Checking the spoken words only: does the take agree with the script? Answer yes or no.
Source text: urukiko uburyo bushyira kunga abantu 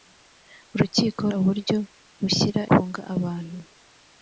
yes